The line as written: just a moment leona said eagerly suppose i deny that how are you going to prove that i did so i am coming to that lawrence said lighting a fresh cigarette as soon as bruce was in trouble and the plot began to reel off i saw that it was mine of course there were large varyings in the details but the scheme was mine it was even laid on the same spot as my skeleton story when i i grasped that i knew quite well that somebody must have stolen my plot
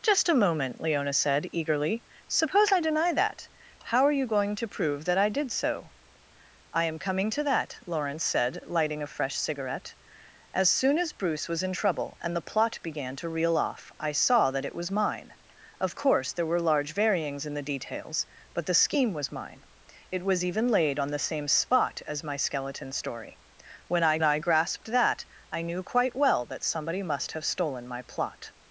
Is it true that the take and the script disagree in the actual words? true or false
false